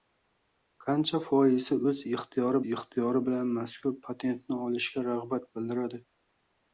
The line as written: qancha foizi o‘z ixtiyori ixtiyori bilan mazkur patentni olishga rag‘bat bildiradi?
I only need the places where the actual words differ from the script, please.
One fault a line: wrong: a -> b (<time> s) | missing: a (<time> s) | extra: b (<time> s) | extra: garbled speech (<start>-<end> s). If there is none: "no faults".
no faults